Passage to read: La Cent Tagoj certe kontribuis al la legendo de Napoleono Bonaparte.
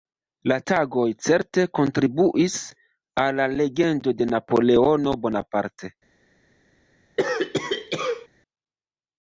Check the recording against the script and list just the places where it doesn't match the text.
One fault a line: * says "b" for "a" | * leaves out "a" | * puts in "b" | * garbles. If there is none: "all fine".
* leaves out "Cent"